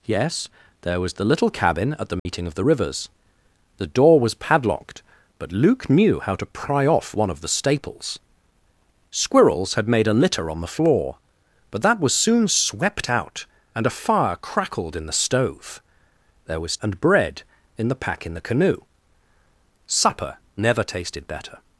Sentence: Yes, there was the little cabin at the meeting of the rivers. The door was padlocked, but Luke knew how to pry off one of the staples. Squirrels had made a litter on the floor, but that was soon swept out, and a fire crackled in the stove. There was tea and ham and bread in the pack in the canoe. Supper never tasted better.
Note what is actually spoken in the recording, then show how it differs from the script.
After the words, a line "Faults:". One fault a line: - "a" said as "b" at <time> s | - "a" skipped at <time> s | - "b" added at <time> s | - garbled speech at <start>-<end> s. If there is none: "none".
Yes, there was the little cabin at the meeting of the rivers. The door was padlocked, but Luke knew how to pry off one of the staples. Squirrels had made a litter on the floor, but that was soon swept out, and a fire crackled in the stove. There was and bread in the pack in the canoe. Supper never tasted better.
Faults:
- "tea and ham" skipped at 16.8 s